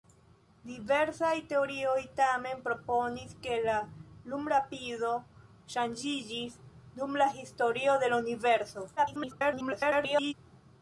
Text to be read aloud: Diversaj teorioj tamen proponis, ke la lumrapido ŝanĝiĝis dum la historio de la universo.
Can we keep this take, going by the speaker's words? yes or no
no